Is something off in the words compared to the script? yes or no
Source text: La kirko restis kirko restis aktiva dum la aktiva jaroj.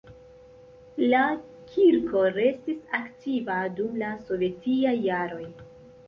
yes